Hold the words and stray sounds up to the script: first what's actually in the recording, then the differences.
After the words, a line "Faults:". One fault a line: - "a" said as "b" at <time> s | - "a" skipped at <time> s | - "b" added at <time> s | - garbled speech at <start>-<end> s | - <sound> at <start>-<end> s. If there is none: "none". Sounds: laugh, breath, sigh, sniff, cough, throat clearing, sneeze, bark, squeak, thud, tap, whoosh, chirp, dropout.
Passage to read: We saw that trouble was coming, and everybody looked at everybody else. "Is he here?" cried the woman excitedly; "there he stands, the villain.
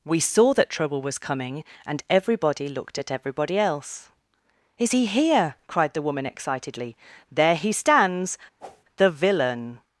We saw that trouble was coming, and everybody looked at everybody else. "Is he here?" cried the woman excitedly; "there he stands, the villain.
Faults:
- whoosh at 8.6-8.8 s